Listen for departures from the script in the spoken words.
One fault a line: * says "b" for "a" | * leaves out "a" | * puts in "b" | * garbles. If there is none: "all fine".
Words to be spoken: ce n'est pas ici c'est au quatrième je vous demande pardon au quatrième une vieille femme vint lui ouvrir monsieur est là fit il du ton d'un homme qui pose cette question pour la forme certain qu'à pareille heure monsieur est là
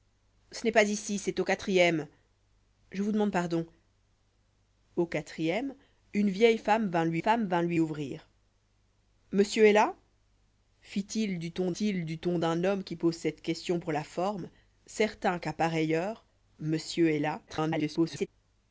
* puts in "femme vint lui"
* puts in "il du ton"
* garbles